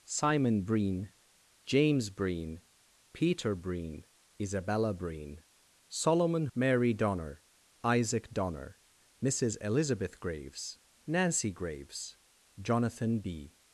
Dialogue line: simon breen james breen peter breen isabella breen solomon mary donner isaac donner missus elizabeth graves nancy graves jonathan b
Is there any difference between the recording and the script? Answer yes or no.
no